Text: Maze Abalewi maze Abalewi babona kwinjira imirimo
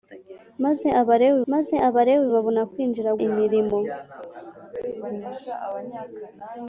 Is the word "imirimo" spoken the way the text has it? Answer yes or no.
yes